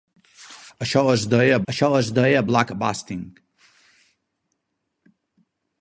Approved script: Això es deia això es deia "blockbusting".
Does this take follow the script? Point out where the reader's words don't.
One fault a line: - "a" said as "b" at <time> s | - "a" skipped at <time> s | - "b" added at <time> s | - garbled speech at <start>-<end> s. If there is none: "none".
none